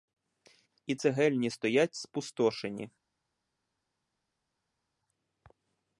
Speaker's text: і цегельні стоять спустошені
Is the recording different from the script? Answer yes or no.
no